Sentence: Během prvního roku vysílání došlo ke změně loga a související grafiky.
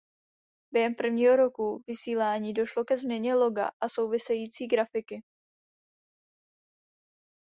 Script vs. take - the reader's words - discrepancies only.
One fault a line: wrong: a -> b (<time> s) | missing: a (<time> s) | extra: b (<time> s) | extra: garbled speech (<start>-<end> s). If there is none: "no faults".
no faults